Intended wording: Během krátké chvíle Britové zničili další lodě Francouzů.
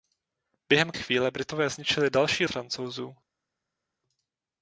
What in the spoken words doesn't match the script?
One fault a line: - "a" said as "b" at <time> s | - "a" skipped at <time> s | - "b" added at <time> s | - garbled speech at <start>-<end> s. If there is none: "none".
- "krátké" skipped at 0.9 s
- "lodě" skipped at 2.5 s